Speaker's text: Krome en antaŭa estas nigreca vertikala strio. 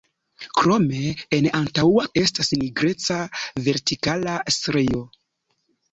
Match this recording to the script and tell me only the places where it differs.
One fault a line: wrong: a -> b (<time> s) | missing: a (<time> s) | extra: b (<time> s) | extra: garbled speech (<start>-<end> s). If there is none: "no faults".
no faults